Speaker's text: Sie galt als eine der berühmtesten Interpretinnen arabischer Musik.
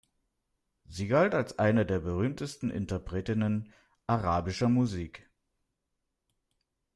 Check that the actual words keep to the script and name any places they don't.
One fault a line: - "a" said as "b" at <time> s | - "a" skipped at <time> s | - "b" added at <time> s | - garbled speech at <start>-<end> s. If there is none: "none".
none